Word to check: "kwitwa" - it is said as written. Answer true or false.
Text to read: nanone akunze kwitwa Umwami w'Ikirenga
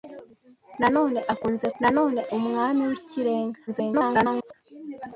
false